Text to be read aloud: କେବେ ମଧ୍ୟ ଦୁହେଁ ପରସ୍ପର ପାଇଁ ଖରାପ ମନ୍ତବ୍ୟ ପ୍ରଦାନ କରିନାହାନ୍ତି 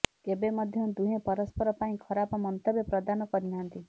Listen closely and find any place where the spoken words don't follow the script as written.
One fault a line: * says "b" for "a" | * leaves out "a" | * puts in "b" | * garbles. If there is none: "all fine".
all fine